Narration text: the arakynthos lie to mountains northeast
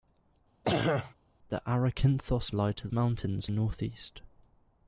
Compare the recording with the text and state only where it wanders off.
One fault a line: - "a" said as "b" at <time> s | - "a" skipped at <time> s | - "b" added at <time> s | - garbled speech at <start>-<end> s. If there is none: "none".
none